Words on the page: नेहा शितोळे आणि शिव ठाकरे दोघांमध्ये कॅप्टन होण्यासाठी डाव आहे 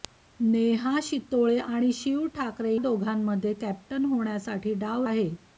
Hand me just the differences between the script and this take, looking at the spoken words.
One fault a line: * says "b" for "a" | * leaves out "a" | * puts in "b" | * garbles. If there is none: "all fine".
all fine